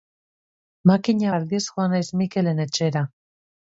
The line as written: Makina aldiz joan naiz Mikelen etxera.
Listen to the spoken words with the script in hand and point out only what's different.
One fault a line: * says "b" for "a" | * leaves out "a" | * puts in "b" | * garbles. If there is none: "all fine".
all fine